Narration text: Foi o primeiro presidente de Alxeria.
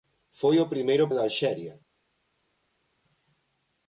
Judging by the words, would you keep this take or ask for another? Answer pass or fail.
fail